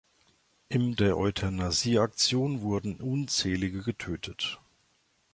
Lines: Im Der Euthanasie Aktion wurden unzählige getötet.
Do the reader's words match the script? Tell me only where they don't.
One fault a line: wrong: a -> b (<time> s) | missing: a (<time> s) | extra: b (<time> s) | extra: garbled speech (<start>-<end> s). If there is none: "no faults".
no faults